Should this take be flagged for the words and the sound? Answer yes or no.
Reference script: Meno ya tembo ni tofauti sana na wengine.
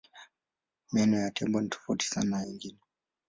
no